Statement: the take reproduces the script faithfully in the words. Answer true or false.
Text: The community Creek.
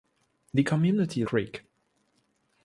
true